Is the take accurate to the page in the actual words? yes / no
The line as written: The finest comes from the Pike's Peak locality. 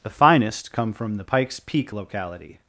no